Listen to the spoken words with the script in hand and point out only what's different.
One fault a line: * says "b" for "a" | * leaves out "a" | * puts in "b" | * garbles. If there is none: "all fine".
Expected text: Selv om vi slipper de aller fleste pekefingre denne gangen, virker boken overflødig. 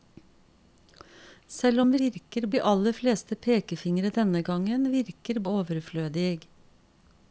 * says "virker" for "slipper"
* leaves out "boken"